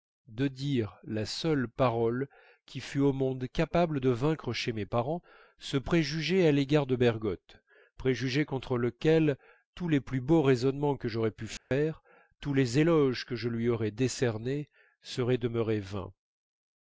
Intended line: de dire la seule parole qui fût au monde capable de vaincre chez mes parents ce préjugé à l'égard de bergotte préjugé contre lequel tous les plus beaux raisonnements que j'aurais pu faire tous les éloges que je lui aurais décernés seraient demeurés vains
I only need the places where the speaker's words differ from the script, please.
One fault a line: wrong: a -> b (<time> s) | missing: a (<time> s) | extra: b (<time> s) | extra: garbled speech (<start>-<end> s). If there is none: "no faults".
no faults